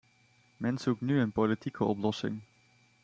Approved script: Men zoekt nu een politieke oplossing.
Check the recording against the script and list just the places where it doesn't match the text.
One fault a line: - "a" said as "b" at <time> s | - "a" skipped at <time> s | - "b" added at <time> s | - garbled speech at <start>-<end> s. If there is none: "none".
none